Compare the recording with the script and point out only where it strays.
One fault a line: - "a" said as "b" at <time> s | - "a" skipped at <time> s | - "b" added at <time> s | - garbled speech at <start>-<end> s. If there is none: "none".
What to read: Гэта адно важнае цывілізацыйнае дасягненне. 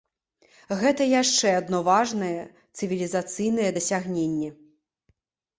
- "яшчэ" added at 1.2 s